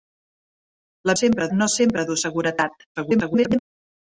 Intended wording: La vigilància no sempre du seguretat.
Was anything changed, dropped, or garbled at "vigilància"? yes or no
yes